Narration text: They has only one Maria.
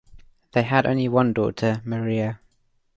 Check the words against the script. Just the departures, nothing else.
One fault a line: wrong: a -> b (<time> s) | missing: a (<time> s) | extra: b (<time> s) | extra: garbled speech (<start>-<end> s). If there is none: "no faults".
wrong: has -> had (0.6 s)
extra: daughter (1.3 s)